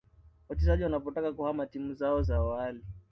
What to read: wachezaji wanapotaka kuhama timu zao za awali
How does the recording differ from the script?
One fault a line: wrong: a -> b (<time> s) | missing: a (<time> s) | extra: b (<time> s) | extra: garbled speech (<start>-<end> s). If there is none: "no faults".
no faults